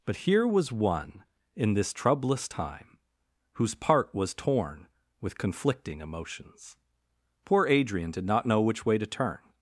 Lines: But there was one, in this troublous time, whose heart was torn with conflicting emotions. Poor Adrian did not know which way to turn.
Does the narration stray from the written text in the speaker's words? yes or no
yes